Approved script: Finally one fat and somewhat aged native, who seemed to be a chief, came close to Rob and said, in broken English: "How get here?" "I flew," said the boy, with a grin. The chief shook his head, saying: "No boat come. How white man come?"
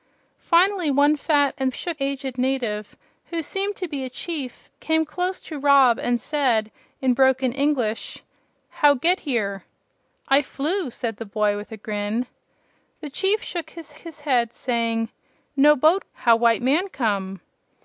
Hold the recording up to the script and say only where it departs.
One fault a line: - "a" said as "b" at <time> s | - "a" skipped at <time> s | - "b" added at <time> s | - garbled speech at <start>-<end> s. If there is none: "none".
- "somewhat" said as "shook" at 1.7 s
- "his" added at 14.0 s
- "come" skipped at 16.1 s